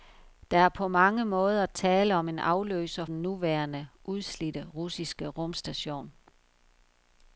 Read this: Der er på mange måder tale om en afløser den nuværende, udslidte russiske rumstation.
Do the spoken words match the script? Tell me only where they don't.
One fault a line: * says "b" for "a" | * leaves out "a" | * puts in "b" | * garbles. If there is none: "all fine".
all fine